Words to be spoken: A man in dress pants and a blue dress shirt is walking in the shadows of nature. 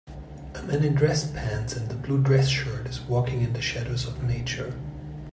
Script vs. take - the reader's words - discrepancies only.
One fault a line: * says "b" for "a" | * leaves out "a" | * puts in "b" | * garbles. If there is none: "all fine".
all fine